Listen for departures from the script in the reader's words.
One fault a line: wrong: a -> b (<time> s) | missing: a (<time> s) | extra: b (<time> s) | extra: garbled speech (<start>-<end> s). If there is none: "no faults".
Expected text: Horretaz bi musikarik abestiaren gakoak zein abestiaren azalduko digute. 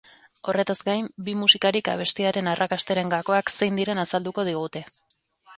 extra: gain (0.9 s)
extra: arrakastaren (2.5 s)
wrong: abestiaren -> diren (3.8 s)